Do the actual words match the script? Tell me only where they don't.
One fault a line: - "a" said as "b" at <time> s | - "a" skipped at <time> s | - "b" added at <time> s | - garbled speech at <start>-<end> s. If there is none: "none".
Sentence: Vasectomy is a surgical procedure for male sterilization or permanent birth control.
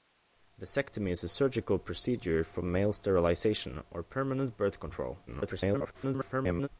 - garbled speech at 5.3-6.7 s